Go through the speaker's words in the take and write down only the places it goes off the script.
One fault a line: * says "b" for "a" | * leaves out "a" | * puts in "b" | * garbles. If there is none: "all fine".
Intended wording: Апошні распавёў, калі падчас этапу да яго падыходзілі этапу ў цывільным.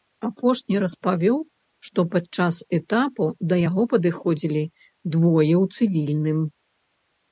* says "што" for "калі"
* says "двое" for "этапу"